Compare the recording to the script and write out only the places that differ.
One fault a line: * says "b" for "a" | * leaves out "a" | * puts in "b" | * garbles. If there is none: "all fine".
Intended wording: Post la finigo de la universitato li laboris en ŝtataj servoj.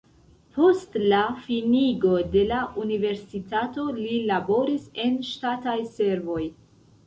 all fine